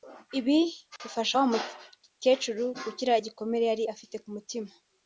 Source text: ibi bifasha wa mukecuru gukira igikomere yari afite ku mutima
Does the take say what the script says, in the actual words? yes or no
yes